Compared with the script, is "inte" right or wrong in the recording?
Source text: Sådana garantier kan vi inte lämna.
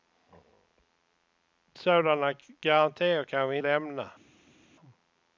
wrong